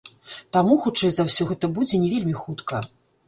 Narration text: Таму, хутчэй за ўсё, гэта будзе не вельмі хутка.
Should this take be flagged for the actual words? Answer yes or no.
no